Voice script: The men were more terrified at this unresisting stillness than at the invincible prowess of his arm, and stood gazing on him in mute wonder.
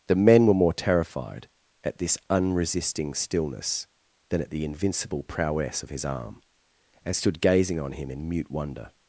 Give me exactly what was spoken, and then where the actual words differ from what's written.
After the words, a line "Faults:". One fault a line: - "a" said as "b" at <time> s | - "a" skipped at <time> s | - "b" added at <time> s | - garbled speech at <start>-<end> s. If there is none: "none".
The men were more terrified at this unresisting stillness than at the invincible prowess of his arm, and stood gazing on him in mute wonder.
Faults:
none